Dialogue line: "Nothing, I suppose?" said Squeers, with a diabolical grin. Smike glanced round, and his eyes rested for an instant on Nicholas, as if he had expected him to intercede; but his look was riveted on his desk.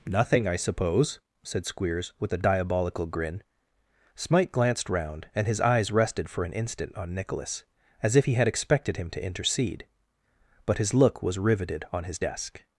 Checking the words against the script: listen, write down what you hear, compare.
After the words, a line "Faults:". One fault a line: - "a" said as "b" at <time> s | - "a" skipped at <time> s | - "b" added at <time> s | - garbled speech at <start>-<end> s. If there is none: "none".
"Nothing, I suppose?" said Squeers, with a diabolical grin. Smike glanced round, and his eyes rested for an instant on Nicholas, as if he had expected him to intercede; but his look was riveted on his desk.
Faults:
none